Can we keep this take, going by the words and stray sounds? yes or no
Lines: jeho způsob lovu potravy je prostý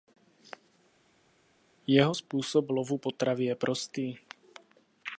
yes